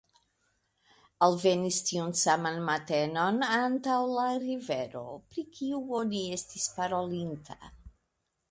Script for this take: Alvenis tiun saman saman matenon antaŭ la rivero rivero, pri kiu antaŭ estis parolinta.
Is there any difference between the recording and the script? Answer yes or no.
yes